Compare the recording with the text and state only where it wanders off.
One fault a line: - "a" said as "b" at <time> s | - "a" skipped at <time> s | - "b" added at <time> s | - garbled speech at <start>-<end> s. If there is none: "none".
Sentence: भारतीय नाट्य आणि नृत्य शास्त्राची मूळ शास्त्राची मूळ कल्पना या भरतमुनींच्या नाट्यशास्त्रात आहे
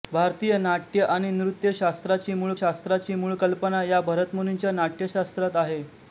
none